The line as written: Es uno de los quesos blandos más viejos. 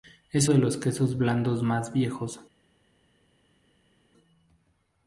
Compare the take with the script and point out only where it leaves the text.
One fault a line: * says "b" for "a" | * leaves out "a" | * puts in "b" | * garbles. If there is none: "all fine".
* leaves out "uno"